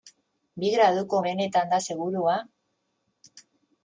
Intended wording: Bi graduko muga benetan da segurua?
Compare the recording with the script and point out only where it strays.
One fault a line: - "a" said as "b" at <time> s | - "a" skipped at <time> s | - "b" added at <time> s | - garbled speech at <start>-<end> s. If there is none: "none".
- "muga" skipped at 1.2 s